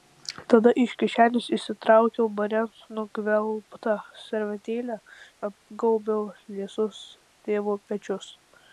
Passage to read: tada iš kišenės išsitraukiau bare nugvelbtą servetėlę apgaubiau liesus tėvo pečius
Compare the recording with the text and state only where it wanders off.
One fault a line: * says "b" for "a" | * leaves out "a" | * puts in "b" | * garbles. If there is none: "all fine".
all fine